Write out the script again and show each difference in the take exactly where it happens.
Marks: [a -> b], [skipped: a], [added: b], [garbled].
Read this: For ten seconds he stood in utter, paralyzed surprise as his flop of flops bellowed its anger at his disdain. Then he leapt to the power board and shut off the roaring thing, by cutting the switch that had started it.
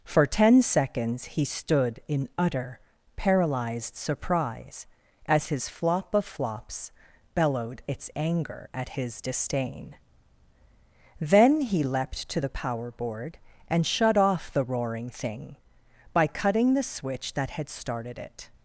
For ten seconds he stood in utter, paralyzed surprise as his flop of flops bellowed its anger at his disdain. Then he leapt to the power board and shut off the roaring thing, by cutting the switch that had started it.